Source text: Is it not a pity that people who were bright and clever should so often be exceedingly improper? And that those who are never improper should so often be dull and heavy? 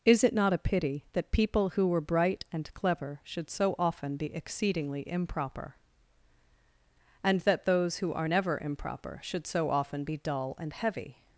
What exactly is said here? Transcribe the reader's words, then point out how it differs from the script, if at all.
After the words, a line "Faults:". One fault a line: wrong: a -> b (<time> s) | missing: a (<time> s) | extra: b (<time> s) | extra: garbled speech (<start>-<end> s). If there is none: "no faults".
Is it not a pity that people who were bright and clever should so often be exceedingly improper? And that those who are never improper should so often be dull and heavy?
Faults:
no faults